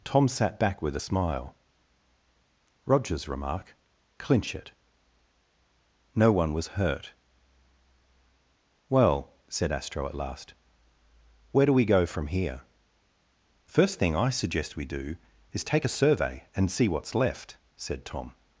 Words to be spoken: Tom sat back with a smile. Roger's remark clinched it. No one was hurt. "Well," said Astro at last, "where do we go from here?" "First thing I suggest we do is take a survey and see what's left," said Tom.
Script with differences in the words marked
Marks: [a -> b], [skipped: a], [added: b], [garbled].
Tom sat back with a smile. Roger's remark [clinched -> clinch] it. No one was hurt. "Well," said Astro at last, "where do we go from here?" "First thing I suggest we do is take a survey and see what's left," said Tom.